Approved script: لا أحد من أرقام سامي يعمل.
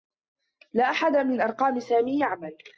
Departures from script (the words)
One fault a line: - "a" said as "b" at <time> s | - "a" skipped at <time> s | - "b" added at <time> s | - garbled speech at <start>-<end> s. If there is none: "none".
none